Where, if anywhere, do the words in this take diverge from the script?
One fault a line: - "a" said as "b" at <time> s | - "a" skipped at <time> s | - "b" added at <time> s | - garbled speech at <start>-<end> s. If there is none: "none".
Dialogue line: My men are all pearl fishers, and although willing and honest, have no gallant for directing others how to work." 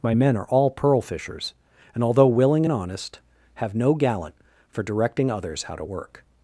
none